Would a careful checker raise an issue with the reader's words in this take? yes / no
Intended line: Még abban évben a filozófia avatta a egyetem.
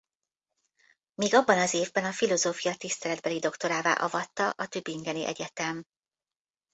yes